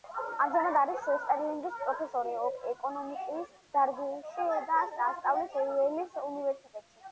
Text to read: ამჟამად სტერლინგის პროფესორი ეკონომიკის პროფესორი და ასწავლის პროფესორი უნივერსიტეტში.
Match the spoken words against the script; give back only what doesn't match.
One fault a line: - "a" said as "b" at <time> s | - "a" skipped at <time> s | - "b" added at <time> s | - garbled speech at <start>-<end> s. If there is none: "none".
- "არის" added at 0.8 s
- "პროფესორი" said as "დარგში" at 3.8 s
- "პროფესორი" said as "იელის" at 5.7 s